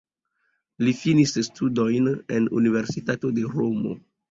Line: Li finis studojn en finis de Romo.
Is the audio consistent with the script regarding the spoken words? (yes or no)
no